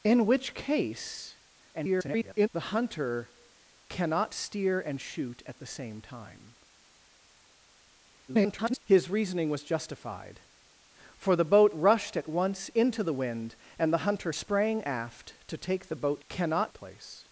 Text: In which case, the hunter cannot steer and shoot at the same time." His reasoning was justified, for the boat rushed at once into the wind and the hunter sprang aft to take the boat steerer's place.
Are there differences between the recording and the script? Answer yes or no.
yes